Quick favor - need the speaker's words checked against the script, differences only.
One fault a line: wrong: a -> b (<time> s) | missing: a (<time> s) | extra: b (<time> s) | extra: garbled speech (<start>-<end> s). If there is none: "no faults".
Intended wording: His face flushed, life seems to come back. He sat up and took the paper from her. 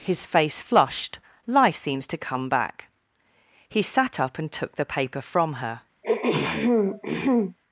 no faults